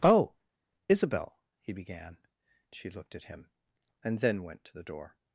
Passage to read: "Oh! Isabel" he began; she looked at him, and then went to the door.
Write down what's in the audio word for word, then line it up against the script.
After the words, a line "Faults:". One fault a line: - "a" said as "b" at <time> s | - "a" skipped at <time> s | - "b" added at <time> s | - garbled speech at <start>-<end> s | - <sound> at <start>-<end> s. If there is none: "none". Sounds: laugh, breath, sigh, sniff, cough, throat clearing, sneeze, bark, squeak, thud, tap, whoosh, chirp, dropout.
"Oh! Isabel" he began; she looked at him, and then went to the door.
Faults:
none